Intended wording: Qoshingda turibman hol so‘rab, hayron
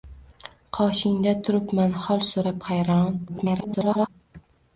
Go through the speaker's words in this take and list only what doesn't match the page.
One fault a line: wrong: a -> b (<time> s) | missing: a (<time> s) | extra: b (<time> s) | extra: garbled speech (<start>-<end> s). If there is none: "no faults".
extra: garbled speech (3.3-4.1 s)